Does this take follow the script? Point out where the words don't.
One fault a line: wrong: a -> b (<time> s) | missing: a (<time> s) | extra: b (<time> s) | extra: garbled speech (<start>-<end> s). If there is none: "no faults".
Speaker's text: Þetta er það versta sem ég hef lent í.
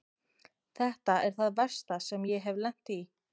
no faults